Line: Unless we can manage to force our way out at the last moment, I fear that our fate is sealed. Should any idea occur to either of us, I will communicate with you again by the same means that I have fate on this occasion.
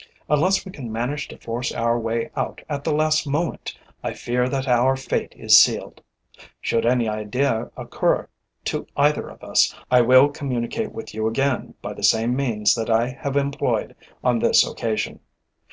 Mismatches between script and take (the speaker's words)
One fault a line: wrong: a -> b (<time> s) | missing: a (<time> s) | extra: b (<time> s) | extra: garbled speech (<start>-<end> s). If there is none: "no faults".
wrong: fate -> employed (13.3 s)